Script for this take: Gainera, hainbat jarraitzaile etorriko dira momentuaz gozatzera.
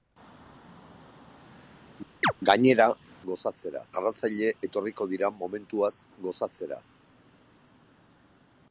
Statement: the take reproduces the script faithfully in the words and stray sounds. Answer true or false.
false